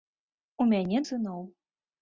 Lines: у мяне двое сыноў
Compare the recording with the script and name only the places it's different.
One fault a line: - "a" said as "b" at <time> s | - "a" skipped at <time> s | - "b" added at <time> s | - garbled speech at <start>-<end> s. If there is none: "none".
- "двое" skipped at 1.0 s